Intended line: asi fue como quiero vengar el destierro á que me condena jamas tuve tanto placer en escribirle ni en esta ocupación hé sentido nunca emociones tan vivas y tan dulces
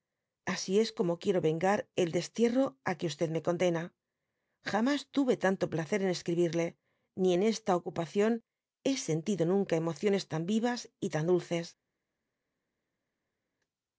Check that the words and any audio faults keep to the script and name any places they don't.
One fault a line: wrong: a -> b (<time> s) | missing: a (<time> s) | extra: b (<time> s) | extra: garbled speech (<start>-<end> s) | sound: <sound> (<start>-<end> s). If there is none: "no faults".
wrong: fue -> es (0.8 s)